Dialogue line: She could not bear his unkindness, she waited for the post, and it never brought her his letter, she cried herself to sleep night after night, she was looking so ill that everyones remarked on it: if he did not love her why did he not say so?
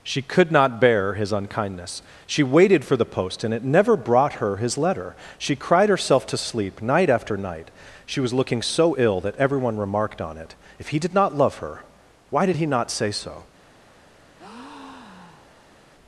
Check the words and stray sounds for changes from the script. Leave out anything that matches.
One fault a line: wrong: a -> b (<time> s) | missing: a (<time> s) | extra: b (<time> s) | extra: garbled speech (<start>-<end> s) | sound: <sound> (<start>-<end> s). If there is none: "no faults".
wrong: everyones -> everyone (9.3 s)
sound: breath (14.4-15.8 s)